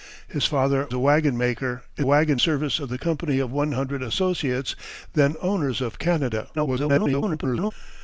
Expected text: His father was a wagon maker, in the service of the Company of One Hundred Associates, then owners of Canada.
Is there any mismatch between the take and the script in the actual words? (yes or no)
yes